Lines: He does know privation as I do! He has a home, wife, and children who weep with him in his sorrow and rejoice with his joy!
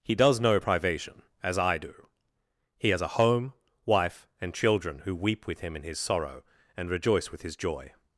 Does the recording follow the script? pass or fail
pass